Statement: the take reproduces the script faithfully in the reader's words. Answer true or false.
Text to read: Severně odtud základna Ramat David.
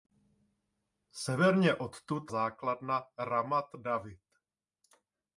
true